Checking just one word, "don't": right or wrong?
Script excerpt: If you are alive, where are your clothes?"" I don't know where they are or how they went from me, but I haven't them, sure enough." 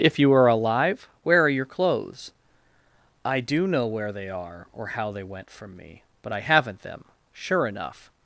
wrong